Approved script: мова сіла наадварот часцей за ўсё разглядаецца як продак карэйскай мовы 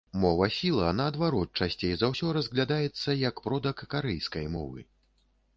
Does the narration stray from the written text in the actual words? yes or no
no